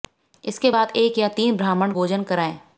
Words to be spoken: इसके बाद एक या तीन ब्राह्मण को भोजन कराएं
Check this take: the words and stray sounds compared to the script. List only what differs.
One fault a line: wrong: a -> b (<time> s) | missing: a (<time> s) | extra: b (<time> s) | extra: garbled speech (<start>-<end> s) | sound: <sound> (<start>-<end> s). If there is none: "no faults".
missing: को (1.9 s)